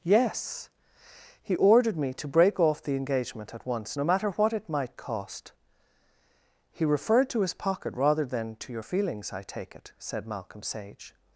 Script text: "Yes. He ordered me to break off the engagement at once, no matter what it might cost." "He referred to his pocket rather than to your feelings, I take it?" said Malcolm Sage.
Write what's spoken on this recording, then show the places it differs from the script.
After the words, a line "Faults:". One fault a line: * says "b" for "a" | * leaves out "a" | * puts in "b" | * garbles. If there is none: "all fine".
"Yes. He ordered me to break off the engagement at once, no matter what it might cost." "He referred to his pocket rather than to your feelings, I take it?" said Malcolm Sage.
Faults:
all fine